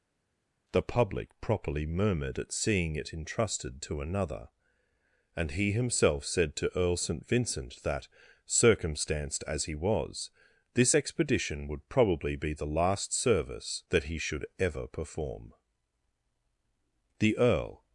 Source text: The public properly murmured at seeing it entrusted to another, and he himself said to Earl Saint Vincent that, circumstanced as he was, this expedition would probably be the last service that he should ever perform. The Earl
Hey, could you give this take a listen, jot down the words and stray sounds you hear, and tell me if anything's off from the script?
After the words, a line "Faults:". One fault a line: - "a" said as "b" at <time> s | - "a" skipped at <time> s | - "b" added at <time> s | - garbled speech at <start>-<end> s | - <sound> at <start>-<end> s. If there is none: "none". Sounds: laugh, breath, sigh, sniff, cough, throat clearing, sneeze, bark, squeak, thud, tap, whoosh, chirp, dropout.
The public properly murmured at seeing it entrusted to another, and he himself said to Earl Saint Vincent that, circumstanced as he was, this expedition would probably be the last service that he should ever perform. The Earl
Faults:
none